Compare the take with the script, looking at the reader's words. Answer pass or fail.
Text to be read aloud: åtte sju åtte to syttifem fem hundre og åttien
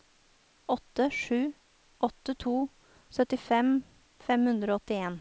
pass